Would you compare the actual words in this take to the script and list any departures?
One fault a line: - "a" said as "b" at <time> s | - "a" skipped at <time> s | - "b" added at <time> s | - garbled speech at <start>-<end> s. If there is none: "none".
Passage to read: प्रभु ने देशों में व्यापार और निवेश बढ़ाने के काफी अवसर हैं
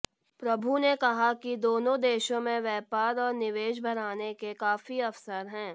- "कहा कि दोनों" added at 0.9 s